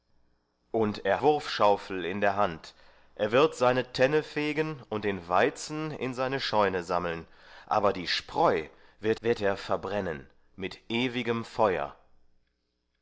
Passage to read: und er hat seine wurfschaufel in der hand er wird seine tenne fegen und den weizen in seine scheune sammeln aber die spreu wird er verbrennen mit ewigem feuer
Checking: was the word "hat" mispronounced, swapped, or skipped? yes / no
yes